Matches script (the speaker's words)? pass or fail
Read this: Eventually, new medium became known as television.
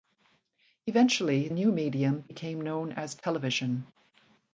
pass